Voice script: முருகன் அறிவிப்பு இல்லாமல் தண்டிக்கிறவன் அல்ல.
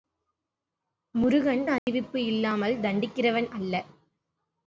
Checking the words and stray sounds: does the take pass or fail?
fail